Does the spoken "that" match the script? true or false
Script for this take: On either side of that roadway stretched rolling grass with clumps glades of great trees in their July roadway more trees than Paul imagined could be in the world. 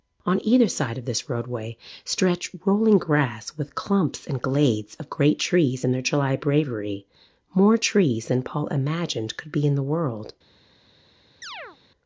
false